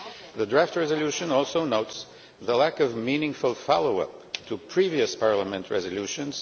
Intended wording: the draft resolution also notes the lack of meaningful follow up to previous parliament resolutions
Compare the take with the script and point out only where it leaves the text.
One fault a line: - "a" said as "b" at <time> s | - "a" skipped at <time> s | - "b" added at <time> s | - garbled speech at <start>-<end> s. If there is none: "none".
none